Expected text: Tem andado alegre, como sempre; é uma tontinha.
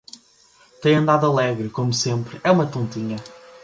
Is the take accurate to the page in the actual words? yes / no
yes